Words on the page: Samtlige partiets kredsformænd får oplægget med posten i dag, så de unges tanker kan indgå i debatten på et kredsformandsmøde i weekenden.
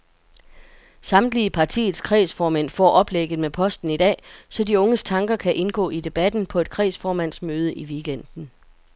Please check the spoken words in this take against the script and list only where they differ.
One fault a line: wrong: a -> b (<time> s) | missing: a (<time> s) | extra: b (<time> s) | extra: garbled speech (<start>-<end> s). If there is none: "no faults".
no faults